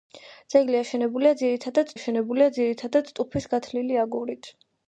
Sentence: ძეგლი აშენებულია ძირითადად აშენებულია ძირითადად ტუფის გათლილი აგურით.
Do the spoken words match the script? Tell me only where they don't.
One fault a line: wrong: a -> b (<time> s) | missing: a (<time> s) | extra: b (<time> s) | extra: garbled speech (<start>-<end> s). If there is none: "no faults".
no faults